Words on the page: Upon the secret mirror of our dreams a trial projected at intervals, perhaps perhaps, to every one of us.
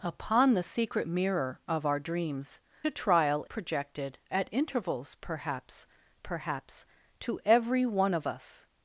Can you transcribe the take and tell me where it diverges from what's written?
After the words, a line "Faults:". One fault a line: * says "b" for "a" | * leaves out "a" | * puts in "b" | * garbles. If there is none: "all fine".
Upon the secret mirror of our dreams a trial projected at intervals, perhaps perhaps, to every one of us.
Faults:
all fine